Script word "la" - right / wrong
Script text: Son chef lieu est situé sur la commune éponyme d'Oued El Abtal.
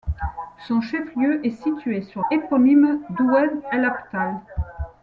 wrong